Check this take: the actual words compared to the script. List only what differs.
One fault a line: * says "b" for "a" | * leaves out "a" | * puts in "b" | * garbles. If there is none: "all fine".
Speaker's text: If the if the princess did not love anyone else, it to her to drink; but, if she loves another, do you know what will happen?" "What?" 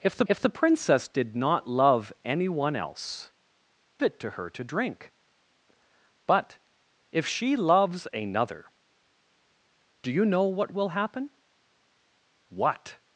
all fine